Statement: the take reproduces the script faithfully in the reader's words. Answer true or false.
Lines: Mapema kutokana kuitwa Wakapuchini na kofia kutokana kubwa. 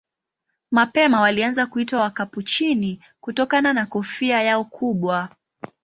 false